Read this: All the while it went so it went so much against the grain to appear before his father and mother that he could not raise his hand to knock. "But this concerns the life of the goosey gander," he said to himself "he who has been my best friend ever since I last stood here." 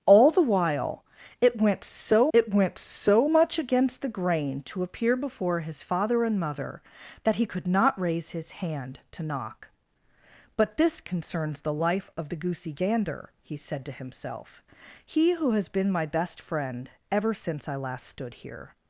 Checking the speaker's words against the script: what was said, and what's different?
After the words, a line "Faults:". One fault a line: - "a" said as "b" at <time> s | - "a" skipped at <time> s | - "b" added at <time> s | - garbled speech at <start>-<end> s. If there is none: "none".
All the while it went so it went so much against the grain to appear before his father and mother that he could not raise his hand to knock. "But this concerns the life of the goosey gander," he said to himself "he who has been my best friend ever since I last stood here."
Faults:
none